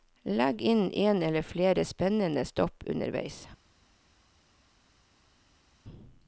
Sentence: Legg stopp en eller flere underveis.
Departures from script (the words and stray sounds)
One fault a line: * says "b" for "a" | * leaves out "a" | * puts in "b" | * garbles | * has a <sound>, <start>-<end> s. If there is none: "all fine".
* says "inn" for "stopp"
* puts in "spennende stopp"